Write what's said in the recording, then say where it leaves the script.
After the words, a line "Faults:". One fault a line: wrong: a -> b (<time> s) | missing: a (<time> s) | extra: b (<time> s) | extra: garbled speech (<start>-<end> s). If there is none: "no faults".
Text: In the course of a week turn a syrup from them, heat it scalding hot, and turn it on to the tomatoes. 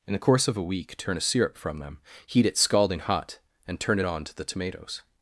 In the course of a week turn a syrup from them, heat it scalding hot, and turn it on to the tomatoes.
Faults:
no faults